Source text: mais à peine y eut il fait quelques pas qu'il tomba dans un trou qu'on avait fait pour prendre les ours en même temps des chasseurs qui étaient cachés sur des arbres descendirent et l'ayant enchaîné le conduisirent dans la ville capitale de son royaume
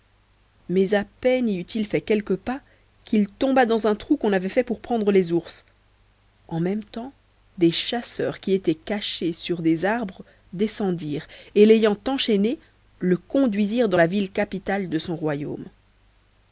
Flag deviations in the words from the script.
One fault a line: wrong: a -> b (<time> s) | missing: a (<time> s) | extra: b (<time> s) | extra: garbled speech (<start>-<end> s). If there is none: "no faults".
no faults